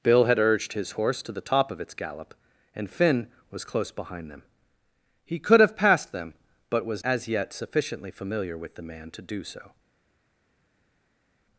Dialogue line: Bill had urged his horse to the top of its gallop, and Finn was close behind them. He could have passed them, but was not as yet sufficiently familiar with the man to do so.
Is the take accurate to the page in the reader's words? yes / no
no